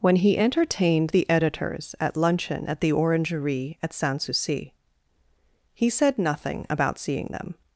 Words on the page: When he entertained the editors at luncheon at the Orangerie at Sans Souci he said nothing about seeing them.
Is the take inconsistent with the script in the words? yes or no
no